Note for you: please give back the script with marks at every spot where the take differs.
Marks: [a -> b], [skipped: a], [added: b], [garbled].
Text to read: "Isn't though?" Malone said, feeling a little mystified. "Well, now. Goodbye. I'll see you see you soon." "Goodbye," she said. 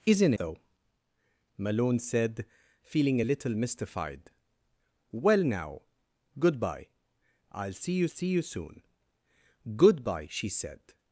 "Isn't though?" Malone said, feeling a little mystified. "Well, now. Goodbye. I'll see you see you soon." "Goodbye," she said.